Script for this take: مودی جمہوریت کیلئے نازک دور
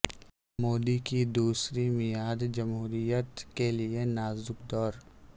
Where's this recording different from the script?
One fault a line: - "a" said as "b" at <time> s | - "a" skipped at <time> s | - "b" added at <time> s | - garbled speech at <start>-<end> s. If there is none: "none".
- "کی دوسری میعاد" added at 1.1 s